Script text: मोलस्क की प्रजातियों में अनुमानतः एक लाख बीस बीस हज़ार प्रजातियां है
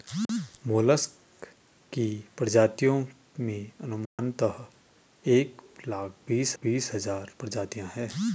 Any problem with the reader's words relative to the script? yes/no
no